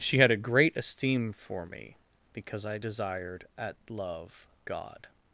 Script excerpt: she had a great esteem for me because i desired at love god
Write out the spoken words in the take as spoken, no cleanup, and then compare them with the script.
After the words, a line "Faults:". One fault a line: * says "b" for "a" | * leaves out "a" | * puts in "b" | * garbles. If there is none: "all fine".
she had a great esteem for me because i desired at love god
Faults:
all fine